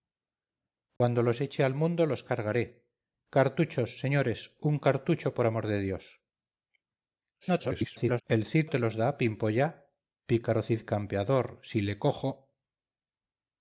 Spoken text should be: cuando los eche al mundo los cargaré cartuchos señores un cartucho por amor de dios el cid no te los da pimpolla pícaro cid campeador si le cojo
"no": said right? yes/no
no